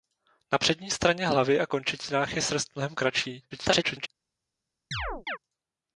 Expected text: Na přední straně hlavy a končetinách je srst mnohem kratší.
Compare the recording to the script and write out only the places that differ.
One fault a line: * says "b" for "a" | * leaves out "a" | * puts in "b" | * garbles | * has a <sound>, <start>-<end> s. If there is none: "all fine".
* garbles
* has a chirp, 4.9-5.4 s